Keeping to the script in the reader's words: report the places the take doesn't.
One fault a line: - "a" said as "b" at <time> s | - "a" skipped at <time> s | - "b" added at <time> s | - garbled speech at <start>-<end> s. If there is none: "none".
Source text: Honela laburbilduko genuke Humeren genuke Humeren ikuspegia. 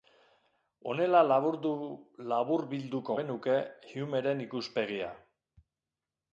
- "genuke Humeren" skipped at 4.5 s